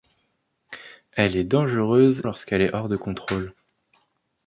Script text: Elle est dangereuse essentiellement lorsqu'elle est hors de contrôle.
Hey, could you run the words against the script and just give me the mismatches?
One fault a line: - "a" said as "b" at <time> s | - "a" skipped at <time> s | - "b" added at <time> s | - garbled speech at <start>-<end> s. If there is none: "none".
- "essentiellement" skipped at 2.2 s